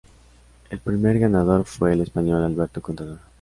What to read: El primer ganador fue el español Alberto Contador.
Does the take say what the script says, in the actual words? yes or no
yes